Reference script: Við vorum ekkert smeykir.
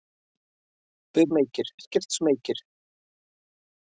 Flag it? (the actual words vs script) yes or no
yes